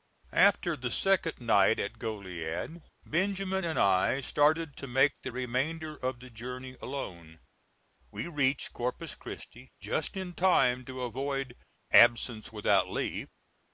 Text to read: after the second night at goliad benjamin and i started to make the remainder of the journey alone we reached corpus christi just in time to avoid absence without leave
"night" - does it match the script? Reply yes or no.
yes